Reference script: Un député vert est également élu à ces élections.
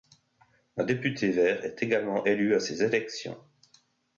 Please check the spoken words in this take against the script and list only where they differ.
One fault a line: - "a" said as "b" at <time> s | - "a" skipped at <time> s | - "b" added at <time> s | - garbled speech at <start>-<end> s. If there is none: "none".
none